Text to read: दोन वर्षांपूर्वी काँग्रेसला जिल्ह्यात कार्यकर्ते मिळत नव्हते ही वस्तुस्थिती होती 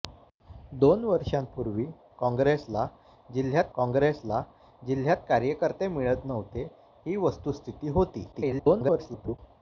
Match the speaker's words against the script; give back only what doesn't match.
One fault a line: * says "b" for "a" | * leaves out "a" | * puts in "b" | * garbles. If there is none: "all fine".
* puts in "काँग्रेसला जिल्ह्यात"
* garbles